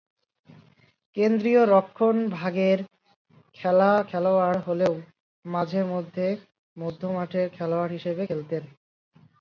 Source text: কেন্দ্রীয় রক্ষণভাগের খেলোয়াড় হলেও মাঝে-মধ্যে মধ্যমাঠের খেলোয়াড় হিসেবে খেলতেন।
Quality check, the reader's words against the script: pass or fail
pass